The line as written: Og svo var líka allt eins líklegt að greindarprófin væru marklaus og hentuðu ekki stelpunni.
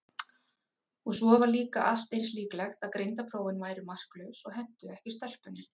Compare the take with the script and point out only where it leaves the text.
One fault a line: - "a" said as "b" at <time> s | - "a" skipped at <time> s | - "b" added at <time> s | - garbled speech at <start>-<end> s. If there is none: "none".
none